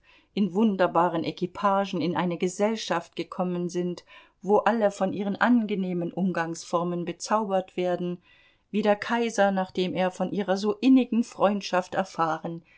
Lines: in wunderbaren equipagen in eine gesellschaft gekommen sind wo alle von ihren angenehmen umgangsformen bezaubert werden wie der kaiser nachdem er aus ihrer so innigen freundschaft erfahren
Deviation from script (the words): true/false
true